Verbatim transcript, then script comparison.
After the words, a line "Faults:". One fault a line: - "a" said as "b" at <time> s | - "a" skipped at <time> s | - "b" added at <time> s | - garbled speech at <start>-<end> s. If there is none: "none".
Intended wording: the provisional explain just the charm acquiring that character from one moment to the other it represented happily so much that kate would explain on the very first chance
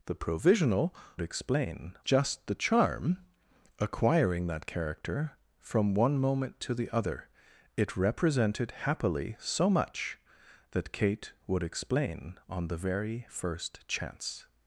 the provisional explain just the charm acquiring that character from one moment to the other it represented happily so much that kate would explain on the very first chance
Faults:
none